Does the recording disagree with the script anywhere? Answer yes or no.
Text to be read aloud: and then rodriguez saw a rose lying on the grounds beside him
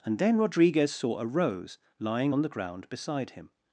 yes